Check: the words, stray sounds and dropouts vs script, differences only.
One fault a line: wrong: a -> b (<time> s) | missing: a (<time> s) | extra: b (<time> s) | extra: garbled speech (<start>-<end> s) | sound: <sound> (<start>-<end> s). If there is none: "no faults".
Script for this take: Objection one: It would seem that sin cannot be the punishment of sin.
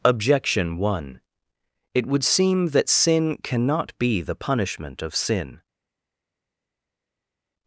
no faults